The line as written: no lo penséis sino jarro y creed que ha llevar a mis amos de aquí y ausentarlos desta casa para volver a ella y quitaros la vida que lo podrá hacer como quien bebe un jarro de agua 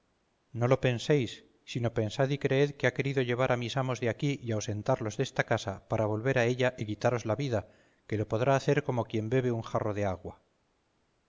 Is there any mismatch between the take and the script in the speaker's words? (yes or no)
yes